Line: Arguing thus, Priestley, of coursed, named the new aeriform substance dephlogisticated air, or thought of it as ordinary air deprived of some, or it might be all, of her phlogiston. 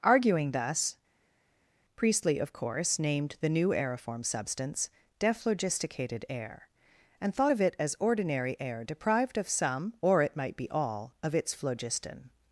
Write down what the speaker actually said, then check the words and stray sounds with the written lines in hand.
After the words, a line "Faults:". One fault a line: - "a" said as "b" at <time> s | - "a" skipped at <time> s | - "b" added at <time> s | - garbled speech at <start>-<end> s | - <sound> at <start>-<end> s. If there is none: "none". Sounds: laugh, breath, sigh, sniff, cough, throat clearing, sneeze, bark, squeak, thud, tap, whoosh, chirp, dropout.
Arguing thus, Priestley, of course, named the new aeriform substance dephlogisticated air, and thought of it as ordinary air deprived of some, or it might be all, of its phlogiston.
Faults:
- "coursed" said as "course" at 2.5 s
- "or" said as "and" at 7.2 s
- "her" said as "its" at 11.3 s